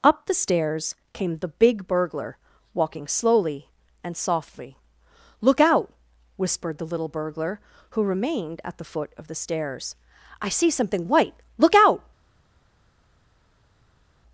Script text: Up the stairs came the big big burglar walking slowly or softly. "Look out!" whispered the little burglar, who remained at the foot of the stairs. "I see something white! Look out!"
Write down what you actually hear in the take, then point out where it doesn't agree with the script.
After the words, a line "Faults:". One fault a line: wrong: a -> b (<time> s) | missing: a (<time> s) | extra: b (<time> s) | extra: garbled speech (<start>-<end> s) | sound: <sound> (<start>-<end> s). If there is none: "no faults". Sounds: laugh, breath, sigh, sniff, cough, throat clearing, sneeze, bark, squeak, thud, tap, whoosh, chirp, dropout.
Up the stairs came the big burglar walking slowly and softly. "Look out!" whispered the little burglar, who remained at the foot of the stairs. "I see something white! Look out!"
Faults:
missing: big (1.9 s)
wrong: or -> and (4.0 s)